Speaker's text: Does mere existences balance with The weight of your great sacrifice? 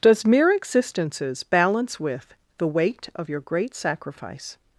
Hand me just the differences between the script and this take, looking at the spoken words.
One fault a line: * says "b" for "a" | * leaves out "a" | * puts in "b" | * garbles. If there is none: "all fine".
all fine